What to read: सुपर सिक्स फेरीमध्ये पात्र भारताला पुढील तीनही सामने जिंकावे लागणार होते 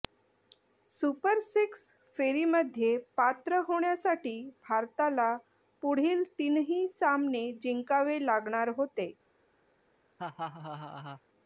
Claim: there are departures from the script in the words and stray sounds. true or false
true